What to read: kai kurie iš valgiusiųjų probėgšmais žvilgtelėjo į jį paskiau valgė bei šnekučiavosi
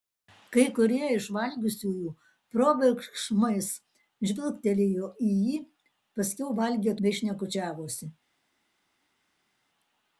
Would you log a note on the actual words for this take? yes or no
no